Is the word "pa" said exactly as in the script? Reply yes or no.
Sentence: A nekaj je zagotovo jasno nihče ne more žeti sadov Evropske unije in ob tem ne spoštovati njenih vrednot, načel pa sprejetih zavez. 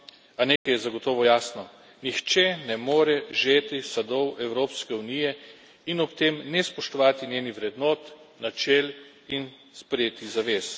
no